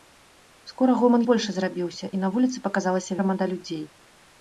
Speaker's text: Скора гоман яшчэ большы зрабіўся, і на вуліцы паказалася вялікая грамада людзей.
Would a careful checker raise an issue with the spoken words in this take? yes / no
yes